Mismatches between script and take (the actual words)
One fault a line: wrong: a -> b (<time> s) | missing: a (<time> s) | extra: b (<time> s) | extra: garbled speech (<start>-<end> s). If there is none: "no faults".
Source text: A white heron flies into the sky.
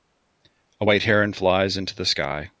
no faults